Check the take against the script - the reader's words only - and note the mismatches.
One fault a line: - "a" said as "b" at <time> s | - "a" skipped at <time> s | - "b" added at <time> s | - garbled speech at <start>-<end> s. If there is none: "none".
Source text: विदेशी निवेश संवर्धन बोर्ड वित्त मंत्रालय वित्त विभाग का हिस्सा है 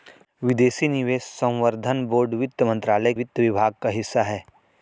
none